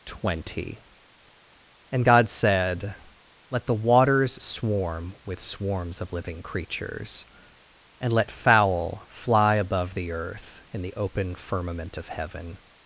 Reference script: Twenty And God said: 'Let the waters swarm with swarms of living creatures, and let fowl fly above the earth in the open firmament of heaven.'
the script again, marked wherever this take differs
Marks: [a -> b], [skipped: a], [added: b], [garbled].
Twenty And God said: 'Let the waters swarm with swarms of living creatures, and let fowl fly above the earth in the open firmament of heaven.'